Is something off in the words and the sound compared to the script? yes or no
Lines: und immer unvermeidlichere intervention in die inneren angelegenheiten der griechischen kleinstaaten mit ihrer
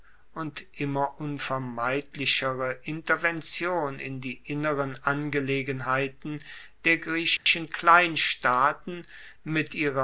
yes